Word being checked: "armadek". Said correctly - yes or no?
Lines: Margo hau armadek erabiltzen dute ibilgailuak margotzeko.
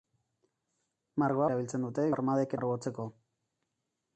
no